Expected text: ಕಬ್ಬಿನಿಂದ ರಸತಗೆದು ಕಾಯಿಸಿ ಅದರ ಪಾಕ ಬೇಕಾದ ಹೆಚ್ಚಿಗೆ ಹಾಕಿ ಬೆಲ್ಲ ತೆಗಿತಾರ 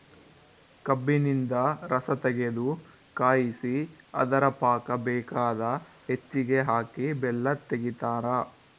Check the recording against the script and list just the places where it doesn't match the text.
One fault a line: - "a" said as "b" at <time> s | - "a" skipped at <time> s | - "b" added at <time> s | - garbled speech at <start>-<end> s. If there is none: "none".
none